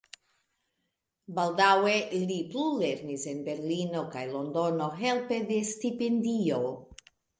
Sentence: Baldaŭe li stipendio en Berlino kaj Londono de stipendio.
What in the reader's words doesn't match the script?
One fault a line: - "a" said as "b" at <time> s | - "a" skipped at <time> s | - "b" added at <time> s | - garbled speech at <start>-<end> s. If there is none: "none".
- "stipendio" said as "plulernis" at 2.5 s
- "helpe" added at 5.0 s